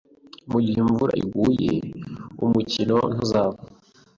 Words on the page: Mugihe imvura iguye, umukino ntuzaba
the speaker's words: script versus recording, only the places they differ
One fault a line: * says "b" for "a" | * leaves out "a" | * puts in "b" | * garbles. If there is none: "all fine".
all fine